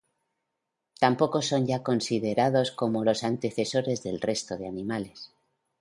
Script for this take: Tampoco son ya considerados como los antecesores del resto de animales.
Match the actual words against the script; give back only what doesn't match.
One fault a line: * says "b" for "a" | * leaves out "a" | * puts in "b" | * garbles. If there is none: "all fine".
all fine